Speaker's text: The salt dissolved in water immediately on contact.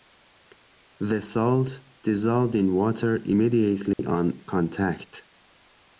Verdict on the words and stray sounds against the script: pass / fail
fail